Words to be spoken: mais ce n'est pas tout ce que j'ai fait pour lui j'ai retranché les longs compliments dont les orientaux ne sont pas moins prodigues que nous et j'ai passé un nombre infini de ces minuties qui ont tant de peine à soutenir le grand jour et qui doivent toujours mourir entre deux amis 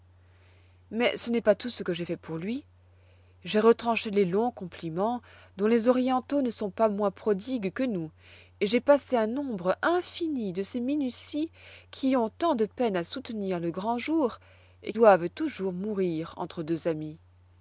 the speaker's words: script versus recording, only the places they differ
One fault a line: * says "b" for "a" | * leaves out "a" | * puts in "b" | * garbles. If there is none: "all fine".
* leaves out "qui"